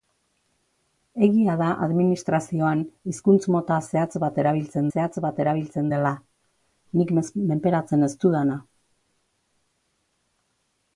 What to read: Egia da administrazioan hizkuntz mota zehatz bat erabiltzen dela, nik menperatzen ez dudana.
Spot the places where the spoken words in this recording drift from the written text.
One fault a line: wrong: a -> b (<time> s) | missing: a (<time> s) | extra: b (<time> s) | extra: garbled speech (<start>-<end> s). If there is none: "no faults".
extra: zehatz bat erabiltzen (4.9 s)